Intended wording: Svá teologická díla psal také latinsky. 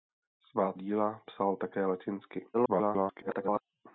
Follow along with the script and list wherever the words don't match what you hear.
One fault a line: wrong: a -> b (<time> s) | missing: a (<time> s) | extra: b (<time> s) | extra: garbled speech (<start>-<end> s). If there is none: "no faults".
missing: teologická (0.7 s)
extra: garbled speech (2.5-3.6 s)